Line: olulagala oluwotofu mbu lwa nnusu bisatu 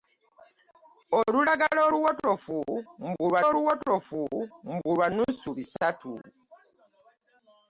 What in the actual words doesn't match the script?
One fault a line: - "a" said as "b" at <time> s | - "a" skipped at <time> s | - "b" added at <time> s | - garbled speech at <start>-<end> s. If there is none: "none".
- "oluwotofu mbu lwa" added at 3.5 s